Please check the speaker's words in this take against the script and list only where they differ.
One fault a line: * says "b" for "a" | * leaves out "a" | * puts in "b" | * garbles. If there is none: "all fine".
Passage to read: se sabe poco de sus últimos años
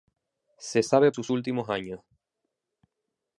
* leaves out "poco de"